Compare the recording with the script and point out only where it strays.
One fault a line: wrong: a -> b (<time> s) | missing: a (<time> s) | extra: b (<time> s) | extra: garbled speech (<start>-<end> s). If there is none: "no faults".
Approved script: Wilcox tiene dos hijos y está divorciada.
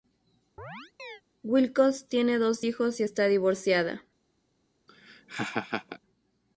no faults